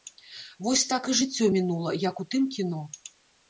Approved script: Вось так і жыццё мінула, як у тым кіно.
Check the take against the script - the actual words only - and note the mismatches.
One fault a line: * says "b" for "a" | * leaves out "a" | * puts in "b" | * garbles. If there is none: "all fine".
all fine